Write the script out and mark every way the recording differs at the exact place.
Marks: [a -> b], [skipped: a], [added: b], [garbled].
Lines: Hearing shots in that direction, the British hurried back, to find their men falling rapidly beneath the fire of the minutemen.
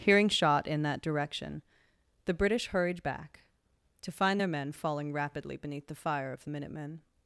Hearing [shots -> shot] in that direction, the British hurried back, to find their men falling rapidly beneath the fire of the minutemen.